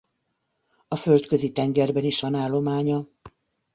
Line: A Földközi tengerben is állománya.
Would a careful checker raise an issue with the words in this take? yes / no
yes